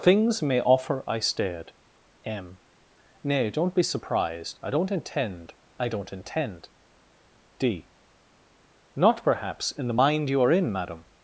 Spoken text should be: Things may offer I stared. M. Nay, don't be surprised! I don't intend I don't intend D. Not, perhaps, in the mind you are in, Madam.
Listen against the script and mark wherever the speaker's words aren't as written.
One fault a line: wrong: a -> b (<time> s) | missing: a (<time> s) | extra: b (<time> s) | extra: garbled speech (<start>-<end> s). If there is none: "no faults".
no faults